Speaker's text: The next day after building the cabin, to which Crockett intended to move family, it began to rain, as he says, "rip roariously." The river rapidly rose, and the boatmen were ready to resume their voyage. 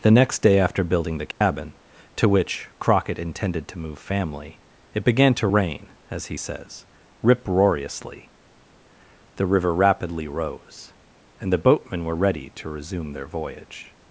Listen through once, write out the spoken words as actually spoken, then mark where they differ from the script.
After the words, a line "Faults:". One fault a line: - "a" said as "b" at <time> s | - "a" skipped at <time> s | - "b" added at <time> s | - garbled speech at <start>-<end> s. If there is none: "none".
The next day after building the cabin, to which Crockett intended to move family, it began to rain, as he says, "rip roariously." The river rapidly rose, and the boatmen were ready to resume their voyage.
Faults:
none